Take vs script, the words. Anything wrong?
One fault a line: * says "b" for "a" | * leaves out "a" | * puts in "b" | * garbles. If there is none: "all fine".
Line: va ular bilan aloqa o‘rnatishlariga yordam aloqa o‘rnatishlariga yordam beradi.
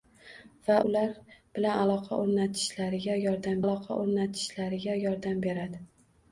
all fine